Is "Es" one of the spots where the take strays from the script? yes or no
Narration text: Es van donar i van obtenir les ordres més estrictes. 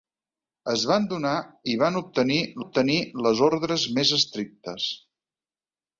no